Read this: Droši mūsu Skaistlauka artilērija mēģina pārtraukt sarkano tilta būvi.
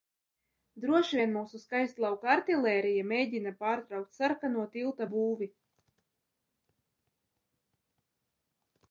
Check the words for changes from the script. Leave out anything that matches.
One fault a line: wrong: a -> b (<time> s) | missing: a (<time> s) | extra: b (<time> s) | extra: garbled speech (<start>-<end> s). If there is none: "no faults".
extra: vien (1.1 s)